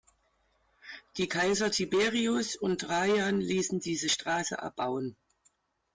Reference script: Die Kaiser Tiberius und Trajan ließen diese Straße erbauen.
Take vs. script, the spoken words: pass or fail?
pass